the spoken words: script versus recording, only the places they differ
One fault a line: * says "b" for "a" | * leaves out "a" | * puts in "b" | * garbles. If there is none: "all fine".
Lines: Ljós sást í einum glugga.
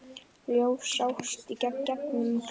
* puts in "einum"